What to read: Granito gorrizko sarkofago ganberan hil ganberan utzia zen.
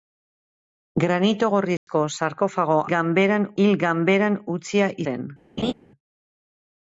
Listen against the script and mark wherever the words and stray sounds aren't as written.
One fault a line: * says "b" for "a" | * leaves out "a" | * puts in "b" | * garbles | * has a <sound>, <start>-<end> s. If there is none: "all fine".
* has a dropout, 1.8-1.9 s
* has a laugh, 5.6-5.7 s